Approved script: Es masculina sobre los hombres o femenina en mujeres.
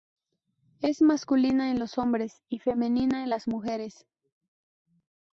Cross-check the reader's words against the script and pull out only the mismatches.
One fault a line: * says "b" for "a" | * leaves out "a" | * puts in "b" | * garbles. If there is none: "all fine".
* says "en" for "sobre"
* says "y" for "o"
* puts in "las"